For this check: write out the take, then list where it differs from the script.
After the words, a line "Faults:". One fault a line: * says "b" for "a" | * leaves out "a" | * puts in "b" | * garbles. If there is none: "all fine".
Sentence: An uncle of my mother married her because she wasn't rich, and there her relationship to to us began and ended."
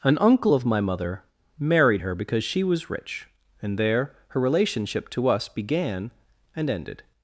An uncle of my mother married her because she was rich, and there her relationship to us began and ended."
Faults:
* says "was" for "wasn't"
* leaves out "to"